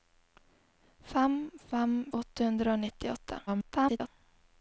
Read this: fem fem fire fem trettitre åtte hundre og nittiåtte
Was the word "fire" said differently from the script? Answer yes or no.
yes